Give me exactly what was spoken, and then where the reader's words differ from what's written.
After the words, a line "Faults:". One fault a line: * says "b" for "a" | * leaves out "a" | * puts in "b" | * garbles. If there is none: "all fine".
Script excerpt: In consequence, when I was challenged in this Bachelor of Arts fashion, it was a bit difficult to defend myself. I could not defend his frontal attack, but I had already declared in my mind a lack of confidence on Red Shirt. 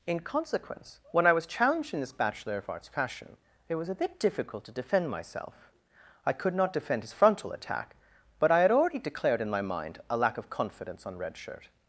In consequence, when I was challenged in this Bachelor of Arts fashion, it was a bit difficult to defend myself. I could not defend his frontal attack, but I had already declared in my mind a lack of confidence on Red Shirt.
Faults:
all fine